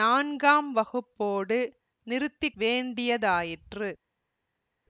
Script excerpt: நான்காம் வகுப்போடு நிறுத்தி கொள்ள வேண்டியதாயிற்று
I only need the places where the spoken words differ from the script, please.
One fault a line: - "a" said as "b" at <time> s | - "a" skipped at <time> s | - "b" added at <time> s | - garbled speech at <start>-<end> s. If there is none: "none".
- "கொள்ள" skipped at 2.5 s